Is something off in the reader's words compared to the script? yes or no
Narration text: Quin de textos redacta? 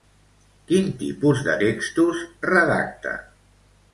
yes